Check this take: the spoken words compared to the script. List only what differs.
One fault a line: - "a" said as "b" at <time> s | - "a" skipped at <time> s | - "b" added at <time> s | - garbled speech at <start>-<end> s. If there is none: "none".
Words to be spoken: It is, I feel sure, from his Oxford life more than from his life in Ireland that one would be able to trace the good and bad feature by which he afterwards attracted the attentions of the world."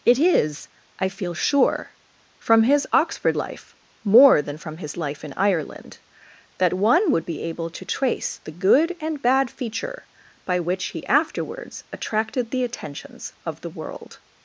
none